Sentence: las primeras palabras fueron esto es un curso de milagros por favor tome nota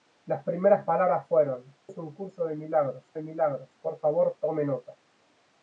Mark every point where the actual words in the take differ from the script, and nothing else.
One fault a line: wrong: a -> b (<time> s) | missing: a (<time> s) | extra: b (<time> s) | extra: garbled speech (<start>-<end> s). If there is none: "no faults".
missing: esto (1.6 s)
extra: de milagros (3.1 s)